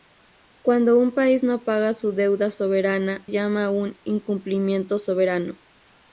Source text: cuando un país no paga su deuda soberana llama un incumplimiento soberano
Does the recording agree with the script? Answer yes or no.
yes